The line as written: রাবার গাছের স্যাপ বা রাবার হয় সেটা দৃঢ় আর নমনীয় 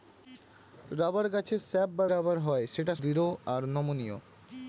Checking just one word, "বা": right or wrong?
right